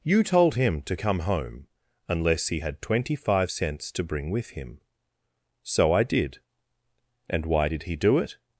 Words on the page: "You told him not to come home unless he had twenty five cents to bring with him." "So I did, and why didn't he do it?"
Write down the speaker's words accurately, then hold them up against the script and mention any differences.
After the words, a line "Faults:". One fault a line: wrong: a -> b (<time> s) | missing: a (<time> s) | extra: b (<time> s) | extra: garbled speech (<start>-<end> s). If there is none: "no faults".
"You told him to come home unless he had twenty five cents to bring with him." "So I did, and why did he do it?"
Faults:
missing: not (0.8 s)
wrong: didn't -> did (7.7 s)